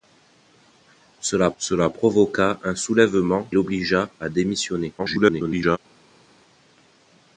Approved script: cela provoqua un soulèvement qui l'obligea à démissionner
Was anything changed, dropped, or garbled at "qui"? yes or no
yes